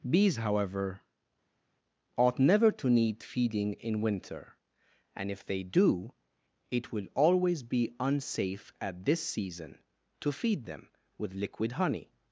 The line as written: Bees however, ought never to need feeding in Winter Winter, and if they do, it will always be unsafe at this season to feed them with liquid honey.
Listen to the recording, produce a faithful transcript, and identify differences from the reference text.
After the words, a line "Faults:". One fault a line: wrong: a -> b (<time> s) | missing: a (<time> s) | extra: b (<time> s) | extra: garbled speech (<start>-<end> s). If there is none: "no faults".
Bees however, ought never to need feeding in Winter, and if they do, it will always be unsafe at this season to feed them with liquid honey.
Faults:
missing: Winter (4.6 s)